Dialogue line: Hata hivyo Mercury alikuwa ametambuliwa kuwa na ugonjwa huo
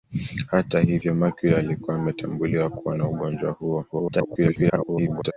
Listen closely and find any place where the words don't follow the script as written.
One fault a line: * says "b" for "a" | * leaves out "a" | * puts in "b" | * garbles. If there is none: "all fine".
* garbles